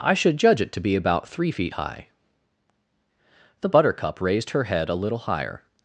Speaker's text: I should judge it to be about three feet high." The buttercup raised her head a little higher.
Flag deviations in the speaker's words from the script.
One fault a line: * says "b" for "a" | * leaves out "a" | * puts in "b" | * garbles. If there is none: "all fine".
all fine